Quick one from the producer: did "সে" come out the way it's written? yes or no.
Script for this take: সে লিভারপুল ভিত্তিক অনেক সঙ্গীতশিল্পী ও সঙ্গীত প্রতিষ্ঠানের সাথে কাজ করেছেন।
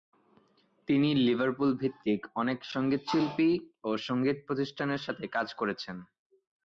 no